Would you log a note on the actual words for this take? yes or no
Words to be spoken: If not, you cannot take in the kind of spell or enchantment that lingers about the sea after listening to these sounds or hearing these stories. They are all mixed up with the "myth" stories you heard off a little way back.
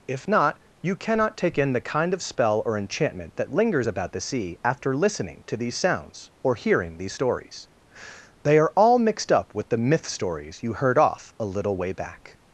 no